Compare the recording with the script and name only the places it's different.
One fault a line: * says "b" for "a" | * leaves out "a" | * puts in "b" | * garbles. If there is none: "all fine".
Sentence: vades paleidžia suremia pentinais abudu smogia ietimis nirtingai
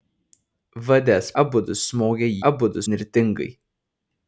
* leaves out "paleidžia suremia pentinais"
* says "abudu" for "ietimis"